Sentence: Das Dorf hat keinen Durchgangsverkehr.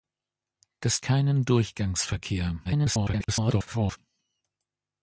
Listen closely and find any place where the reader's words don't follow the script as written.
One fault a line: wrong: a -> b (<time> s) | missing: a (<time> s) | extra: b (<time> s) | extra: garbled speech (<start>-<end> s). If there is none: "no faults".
missing: Dorf hat (1.0 s)
extra: garbled speech (2.6-4.0 s)